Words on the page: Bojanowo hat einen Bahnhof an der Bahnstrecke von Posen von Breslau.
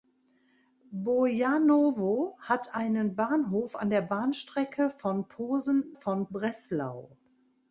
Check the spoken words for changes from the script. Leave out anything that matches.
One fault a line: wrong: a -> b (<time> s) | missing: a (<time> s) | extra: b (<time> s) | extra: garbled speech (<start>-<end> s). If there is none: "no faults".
no faults